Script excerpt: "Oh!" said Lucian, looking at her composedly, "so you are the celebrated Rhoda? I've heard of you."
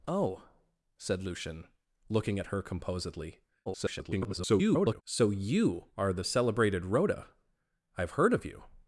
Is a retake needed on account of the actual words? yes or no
yes